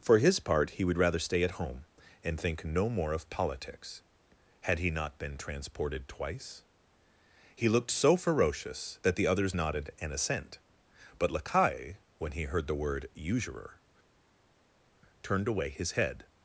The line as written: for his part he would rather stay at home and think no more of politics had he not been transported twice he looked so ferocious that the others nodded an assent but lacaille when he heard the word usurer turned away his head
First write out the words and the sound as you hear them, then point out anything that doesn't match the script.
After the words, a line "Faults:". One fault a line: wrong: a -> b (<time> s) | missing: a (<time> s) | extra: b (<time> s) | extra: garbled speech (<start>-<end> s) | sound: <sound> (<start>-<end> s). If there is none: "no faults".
for his part he would rather stay at home and think no more of politics had he not been transported twice he looked so ferocious that the others nodded an assent but lacaille when he heard the word usurer turned away his head
Faults:
no faults